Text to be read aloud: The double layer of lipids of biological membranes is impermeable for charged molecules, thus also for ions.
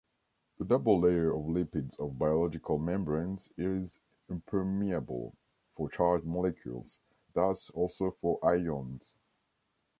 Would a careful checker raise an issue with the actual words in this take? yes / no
no